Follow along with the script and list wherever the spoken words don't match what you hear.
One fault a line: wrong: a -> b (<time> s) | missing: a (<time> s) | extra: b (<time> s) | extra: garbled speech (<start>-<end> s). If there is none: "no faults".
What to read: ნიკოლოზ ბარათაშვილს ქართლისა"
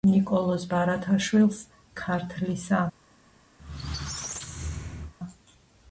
no faults